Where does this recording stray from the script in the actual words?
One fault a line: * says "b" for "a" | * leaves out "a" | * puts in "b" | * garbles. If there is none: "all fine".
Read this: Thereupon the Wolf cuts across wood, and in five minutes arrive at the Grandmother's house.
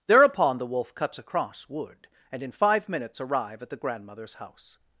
all fine